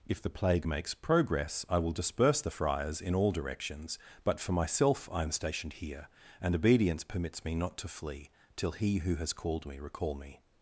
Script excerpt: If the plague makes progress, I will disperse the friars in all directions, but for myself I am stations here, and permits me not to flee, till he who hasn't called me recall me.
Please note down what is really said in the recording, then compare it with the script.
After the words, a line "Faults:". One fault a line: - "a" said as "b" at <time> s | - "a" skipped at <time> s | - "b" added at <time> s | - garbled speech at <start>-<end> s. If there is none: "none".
If the plague makes progress, I will disperse the friars in all directions, but for myself I am stationed here, and obedience permits me not to flee, till he who has called me recall me.
Faults:
- "stations" said as "stationed" at 5.3 s
- "obedience" added at 6.5 s
- "hasn't" said as "has" at 9.2 s